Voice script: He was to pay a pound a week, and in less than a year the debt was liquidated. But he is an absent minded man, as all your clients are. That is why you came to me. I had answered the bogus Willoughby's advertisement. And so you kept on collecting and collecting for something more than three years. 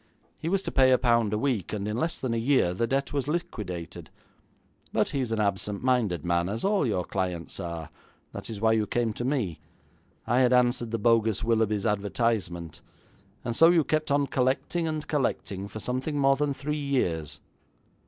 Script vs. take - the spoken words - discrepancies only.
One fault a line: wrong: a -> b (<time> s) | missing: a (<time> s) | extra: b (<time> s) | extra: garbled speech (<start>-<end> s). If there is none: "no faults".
no faults